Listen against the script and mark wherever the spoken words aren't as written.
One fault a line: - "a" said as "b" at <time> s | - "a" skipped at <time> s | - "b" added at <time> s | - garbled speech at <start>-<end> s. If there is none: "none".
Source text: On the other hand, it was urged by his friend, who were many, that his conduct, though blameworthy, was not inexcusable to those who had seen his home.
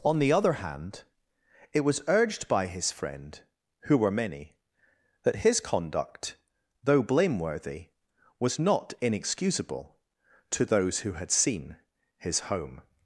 none